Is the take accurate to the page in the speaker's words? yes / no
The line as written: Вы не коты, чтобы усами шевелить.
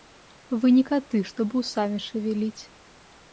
yes